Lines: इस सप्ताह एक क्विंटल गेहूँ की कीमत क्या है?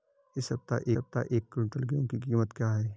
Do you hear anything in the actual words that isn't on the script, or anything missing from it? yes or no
yes